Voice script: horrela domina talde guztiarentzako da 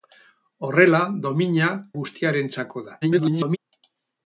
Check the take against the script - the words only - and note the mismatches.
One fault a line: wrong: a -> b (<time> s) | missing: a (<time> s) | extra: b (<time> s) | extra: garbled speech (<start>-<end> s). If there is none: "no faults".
missing: talde (1.7 s)
extra: garbled speech (3.0-3.6 s)